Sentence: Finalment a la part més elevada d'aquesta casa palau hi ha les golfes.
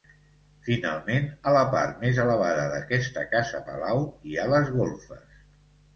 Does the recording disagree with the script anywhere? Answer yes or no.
no